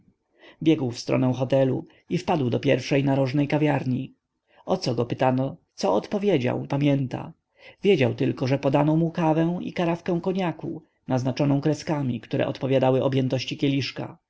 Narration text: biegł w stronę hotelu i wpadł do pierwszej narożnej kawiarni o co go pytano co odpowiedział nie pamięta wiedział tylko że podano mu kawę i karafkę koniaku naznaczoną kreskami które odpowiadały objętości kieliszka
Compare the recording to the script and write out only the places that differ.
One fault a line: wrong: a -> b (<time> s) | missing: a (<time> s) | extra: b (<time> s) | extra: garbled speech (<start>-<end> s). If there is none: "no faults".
missing: nie (6.7 s)